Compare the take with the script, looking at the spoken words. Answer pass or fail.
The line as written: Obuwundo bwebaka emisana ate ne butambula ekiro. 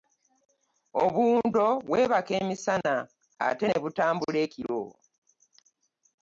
pass